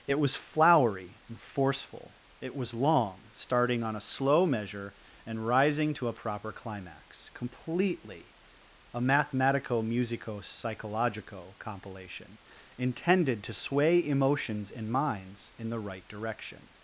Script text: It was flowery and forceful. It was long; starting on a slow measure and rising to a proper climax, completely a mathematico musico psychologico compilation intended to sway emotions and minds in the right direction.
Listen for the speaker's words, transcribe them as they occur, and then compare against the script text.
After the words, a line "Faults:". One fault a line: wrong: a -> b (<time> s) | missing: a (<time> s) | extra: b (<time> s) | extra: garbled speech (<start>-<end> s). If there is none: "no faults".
It was flowery and forceful. It was long; starting on a slow measure and rising to a proper climax, completely a mathematico musico psychologico compilation intended to sway emotions and minds in the right direction.
Faults:
no faults